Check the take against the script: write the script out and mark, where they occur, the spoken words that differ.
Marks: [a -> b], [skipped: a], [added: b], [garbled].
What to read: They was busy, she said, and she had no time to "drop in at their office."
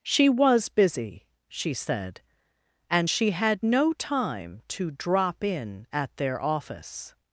[They -> She] was busy, she said, and she had no time to "drop in at their office."